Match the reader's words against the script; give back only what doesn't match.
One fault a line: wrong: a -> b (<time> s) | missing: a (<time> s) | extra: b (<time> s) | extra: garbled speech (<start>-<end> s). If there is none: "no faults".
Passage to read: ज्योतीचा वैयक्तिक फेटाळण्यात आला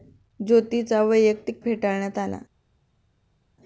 no faults